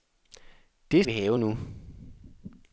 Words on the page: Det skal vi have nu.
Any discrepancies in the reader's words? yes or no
yes